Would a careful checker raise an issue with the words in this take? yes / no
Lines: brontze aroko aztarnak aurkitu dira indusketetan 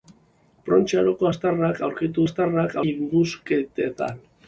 yes